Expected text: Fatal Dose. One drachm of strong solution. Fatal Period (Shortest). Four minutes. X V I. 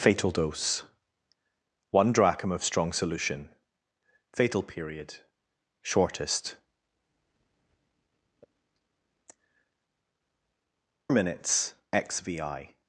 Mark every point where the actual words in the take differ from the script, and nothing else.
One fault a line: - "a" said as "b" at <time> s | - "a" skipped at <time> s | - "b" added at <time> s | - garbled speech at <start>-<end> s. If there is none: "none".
- "Four" skipped at 6.6 s